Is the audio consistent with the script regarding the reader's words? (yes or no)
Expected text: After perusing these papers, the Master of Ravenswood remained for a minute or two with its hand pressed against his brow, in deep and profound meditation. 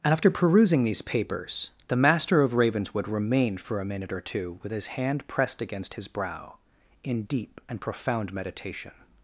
no